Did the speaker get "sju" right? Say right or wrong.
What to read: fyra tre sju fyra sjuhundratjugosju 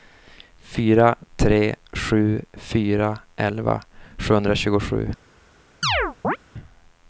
right